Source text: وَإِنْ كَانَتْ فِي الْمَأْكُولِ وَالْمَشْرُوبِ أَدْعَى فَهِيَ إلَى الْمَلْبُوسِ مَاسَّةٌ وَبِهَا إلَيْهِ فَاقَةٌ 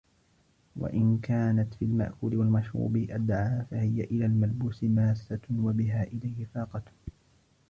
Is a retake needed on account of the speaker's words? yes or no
no